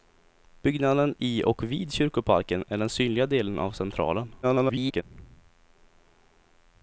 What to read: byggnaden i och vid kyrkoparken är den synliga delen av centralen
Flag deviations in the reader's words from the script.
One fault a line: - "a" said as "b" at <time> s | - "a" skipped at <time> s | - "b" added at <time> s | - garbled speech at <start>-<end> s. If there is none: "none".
- garbled speech at 4.4-5.0 s